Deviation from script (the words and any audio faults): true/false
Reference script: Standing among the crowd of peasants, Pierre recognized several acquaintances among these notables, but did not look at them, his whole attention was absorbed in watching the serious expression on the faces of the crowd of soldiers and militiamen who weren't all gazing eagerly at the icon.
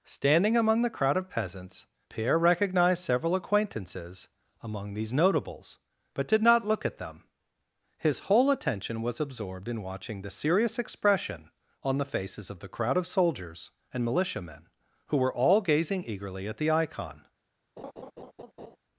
true